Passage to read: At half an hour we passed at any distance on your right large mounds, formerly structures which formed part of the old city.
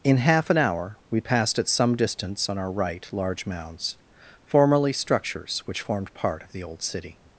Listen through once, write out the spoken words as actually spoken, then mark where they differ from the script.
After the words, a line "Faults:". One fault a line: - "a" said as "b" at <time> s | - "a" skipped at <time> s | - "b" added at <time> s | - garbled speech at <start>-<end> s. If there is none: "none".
In half an hour we passed at some distance on our right large mounds, formerly structures which formed part of the old city.
Faults:
- "At" said as "In" at 0.0 s
- "any" said as "some" at 1.7 s
- "your" said as "our" at 2.6 s